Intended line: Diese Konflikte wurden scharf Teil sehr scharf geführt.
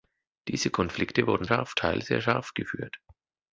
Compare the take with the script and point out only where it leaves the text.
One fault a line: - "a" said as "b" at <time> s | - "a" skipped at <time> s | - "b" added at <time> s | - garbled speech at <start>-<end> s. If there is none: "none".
none